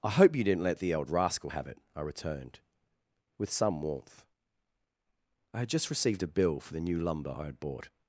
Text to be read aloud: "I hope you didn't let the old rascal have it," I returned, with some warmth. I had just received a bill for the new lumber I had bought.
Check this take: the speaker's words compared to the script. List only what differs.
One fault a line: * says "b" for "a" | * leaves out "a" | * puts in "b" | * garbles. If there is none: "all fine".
all fine